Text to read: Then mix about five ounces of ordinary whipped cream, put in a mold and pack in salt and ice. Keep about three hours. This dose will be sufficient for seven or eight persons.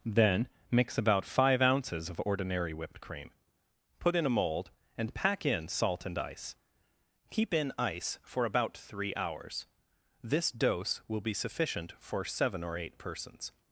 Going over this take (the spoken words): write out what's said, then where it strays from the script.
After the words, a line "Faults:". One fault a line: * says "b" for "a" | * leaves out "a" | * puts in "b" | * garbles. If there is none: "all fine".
Then mix about five ounces of ordinary whipped cream, put in a mold and pack in salt and ice. Keep in ice for about three hours. This dose will be sufficient for seven or eight persons.
Faults:
* puts in "in ice for"